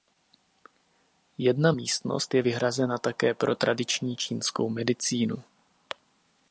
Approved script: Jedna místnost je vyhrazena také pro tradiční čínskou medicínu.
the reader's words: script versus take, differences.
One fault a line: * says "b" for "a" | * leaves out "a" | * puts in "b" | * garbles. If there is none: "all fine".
all fine